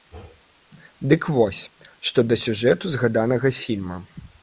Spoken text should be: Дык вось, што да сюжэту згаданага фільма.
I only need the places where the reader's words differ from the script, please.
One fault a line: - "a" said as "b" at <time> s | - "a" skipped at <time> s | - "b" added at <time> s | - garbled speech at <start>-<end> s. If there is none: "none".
none